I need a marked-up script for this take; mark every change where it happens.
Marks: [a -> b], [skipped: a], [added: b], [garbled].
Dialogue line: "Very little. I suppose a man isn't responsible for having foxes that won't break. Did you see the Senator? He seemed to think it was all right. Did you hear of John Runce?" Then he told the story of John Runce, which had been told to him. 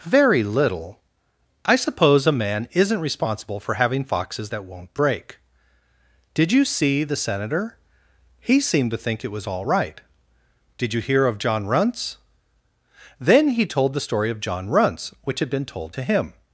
"Very little. I suppose a man isn't responsible for having foxes that won't break. Did you see the Senator? He seemed to think it was all right. Did you hear of John Runce?" Then he told the story of John Runce, which had been told to him.